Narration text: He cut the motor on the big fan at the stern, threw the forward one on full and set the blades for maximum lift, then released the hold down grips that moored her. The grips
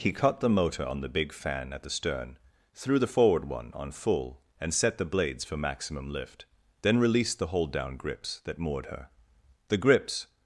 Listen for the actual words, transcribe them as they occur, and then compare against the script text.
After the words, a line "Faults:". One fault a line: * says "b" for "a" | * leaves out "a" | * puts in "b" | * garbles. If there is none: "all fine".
He cut the motor on the big fan at the stern, threw the forward one on full and set the blades for maximum lift, then released the hold down grips that moored her. The grips
Faults:
all fine